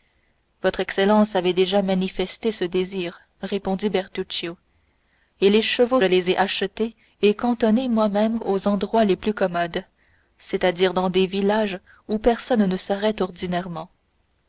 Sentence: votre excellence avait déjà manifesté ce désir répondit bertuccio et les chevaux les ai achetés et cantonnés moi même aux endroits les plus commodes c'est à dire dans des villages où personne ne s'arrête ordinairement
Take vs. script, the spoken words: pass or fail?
pass